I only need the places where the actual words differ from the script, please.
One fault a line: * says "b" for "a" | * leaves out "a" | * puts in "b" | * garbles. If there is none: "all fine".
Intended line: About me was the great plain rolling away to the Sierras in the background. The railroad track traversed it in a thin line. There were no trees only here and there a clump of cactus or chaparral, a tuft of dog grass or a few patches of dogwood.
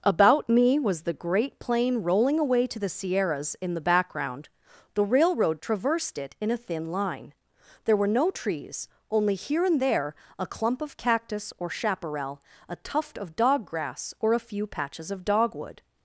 * leaves out "track"